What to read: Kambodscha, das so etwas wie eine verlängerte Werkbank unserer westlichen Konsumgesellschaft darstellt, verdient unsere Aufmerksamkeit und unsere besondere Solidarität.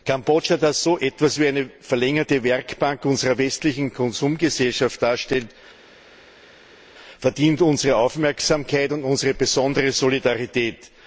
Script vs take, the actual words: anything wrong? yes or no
no